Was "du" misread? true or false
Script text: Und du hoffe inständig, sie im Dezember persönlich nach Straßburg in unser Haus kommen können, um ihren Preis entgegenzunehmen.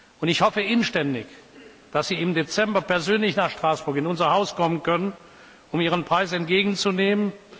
true